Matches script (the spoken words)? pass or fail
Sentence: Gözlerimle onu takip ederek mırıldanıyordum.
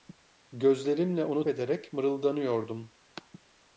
fail